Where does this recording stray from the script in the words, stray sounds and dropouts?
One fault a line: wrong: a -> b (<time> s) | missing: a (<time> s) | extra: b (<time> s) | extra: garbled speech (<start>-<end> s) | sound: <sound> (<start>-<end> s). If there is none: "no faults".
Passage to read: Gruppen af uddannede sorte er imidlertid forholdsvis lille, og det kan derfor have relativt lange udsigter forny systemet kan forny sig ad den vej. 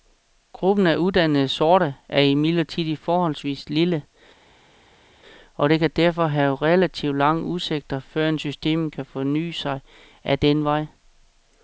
wrong: forny -> førend (8.0 s)